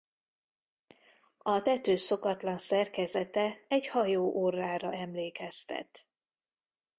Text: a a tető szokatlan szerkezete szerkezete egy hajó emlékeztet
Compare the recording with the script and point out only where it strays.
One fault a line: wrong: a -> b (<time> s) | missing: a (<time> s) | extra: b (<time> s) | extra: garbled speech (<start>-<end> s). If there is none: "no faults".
missing: a (1.6 s)
missing: szerkezete (3.7 s)
extra: orrára (4.4 s)